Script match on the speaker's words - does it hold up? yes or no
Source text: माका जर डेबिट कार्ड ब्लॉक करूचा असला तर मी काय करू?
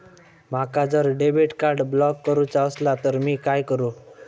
yes